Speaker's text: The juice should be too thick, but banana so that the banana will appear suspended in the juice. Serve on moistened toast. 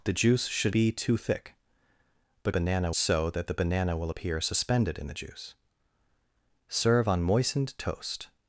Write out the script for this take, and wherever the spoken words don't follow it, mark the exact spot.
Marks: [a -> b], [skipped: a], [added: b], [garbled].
The juice should be too thick, but banana so that the banana will appear suspended in the juice. Serve on moistened toast.